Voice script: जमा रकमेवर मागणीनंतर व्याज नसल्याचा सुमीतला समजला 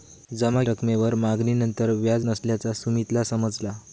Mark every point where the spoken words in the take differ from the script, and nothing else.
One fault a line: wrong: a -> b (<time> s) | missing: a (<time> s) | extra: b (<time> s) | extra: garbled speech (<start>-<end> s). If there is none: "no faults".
no faults